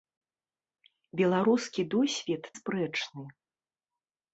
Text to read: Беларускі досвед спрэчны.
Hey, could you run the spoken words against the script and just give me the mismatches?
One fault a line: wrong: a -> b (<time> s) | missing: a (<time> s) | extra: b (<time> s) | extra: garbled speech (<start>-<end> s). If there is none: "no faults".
no faults